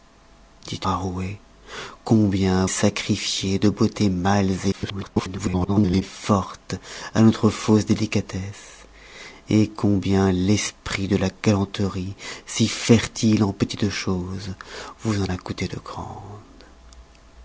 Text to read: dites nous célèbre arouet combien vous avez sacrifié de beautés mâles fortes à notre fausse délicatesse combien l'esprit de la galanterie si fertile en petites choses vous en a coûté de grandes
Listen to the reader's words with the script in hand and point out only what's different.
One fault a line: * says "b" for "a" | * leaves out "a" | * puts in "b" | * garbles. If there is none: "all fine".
* leaves out "nous célèbre"
* leaves out "vous avez"
* garbles